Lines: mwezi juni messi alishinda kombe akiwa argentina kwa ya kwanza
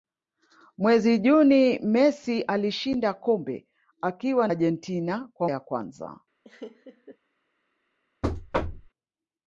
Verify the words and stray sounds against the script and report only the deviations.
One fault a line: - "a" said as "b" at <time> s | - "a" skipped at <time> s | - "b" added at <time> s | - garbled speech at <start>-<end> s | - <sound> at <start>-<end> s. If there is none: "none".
- laugh at 6.4-7.2 s
- thud at 8.2-8.9 s